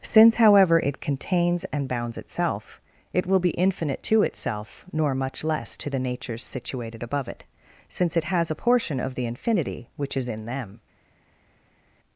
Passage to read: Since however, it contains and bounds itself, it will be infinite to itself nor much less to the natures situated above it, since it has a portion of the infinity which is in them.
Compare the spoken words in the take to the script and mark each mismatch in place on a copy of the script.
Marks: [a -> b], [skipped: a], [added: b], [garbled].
Since however, it contains and bounds itself, it will be infinite to itself nor much less to the natures situated above it, since it has a portion of the infinity which is in them.